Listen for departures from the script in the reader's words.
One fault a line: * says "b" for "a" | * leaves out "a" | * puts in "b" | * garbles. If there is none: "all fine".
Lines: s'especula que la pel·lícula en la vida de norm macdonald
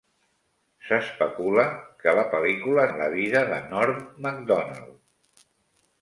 all fine